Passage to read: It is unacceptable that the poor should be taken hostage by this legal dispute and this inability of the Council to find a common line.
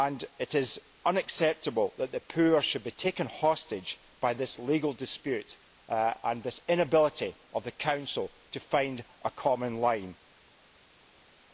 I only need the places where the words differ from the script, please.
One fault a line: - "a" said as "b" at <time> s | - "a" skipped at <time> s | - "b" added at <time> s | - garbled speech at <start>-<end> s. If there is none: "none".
none